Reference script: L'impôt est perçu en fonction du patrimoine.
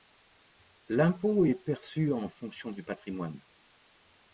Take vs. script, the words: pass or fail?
pass